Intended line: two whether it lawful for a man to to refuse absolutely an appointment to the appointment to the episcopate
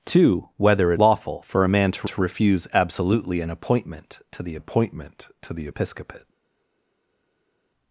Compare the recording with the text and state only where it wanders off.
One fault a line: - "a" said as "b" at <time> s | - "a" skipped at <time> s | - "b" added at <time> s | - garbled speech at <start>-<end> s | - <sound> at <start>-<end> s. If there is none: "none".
none